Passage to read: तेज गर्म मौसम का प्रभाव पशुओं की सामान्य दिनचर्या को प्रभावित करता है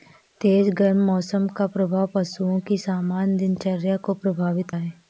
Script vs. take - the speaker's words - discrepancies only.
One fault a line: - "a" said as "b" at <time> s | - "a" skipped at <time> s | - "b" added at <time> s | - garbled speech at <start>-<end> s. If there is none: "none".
- "करता" skipped at 4.7 s